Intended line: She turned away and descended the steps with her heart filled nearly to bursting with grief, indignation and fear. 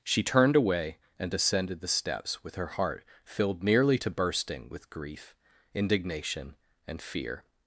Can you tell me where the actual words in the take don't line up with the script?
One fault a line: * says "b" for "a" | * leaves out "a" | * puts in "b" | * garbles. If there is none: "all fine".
all fine